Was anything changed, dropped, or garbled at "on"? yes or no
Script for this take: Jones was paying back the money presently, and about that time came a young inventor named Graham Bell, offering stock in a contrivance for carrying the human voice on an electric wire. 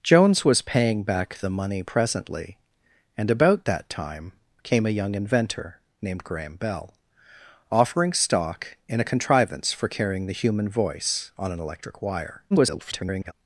no